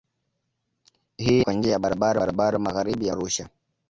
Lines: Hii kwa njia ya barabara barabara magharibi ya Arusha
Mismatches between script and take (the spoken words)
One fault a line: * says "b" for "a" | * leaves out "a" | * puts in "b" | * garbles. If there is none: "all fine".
all fine